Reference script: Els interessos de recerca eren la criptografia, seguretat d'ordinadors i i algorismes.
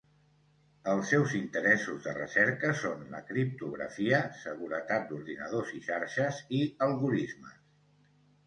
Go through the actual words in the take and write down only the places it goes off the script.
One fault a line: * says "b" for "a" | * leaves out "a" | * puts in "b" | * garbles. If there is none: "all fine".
* puts in "seus"
* says "són" for "eren"
* puts in "xarxes"